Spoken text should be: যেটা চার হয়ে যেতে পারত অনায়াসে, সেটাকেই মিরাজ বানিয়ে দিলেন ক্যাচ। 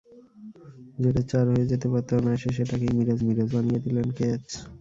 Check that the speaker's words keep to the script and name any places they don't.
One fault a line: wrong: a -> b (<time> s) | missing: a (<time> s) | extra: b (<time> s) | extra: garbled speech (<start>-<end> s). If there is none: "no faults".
extra: মিরাজ (3.3 s)